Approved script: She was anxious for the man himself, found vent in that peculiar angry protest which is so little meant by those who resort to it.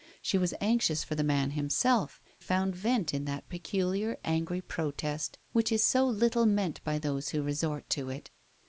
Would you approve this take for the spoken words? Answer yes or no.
yes